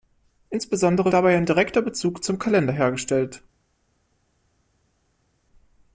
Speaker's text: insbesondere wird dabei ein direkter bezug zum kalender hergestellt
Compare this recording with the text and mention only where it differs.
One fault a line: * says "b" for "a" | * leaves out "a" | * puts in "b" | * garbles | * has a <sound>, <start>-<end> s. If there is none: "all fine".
* leaves out "wird"